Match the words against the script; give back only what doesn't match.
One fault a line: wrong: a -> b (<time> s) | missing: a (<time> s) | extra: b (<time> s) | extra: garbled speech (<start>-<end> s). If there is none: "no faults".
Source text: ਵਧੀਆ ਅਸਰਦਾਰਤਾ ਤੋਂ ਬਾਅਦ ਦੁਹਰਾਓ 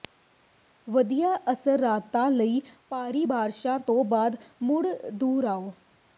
extra: ਲਈ ਭਾਰੀ ਬਾਰਸ਼ਾਂ (2.3 s)
extra: ਮੁੜ (4.6 s)